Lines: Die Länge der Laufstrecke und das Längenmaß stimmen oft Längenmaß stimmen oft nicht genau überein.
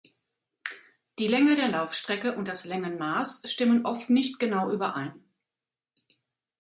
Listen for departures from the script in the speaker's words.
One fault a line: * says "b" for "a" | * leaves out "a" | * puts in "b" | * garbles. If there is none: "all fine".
* leaves out "Längenmaß stimmen oft"